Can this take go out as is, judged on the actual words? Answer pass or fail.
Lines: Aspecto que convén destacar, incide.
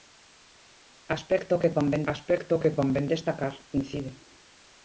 fail